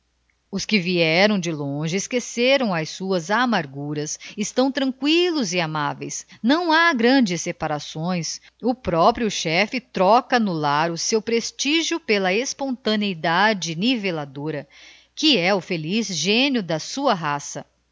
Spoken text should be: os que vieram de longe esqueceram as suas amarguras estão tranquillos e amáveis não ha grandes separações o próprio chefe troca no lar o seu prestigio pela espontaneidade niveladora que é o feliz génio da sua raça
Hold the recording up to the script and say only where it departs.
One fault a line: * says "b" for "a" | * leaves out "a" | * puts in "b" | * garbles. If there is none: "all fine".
all fine